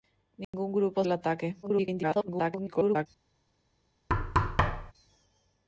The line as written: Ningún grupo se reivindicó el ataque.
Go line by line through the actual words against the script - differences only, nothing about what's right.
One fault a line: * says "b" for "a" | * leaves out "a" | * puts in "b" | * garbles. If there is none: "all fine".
* leaves out "se reivindicó"
* garbles